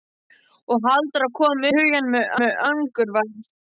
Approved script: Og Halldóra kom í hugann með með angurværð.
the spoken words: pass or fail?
pass